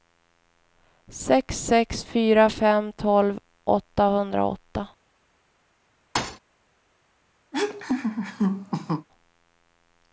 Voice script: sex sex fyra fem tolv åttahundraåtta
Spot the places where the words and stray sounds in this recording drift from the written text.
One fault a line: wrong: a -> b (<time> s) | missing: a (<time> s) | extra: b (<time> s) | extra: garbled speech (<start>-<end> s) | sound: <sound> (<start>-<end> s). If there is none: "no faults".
sound: thud (6.1-6.4 s)
sound: laugh (7.5-9.1 s)